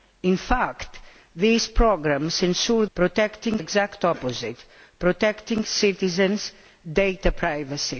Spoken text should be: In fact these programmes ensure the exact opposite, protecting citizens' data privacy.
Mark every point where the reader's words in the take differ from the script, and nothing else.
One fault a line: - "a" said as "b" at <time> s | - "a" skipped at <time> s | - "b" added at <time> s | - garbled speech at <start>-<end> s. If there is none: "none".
- "the" said as "protecting" at 2.9 s